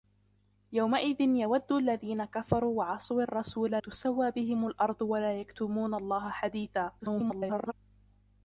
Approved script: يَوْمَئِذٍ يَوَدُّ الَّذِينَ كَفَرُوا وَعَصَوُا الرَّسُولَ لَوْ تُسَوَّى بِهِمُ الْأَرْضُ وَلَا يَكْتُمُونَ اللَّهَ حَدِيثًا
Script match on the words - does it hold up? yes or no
no